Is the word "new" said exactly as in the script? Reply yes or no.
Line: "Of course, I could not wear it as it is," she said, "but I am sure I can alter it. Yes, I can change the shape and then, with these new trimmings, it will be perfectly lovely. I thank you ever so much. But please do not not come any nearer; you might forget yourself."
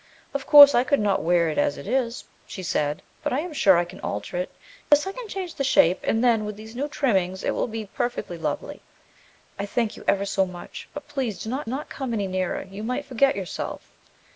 yes